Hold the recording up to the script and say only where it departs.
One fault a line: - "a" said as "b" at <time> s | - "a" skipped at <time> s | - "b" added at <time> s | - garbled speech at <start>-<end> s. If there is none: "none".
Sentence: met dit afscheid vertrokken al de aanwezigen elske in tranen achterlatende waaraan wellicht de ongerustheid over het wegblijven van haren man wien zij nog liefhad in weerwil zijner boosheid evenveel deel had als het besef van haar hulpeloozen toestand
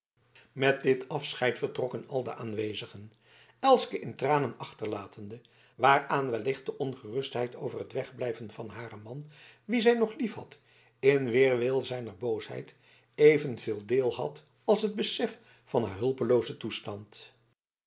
none